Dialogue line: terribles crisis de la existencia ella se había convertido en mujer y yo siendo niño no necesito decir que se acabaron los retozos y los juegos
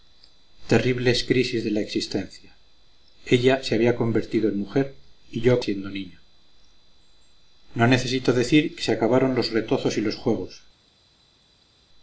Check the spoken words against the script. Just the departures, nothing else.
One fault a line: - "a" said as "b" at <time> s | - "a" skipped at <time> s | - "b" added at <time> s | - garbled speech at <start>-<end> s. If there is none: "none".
none